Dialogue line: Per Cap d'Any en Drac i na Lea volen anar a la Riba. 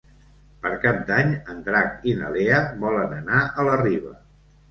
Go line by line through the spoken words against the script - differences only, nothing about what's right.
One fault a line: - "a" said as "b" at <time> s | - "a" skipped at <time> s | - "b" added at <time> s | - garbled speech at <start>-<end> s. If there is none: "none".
none